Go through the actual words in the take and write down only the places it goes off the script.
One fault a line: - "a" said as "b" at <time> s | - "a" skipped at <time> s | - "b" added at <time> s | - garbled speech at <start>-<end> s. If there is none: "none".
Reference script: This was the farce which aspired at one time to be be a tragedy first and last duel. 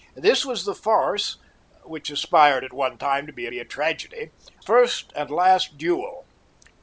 none